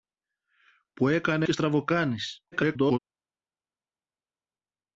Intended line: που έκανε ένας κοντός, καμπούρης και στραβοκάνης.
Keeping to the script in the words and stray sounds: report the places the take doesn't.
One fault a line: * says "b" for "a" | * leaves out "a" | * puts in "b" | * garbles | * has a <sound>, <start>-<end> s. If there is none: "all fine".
* leaves out "ένας κοντός καμπούρης"
* garbles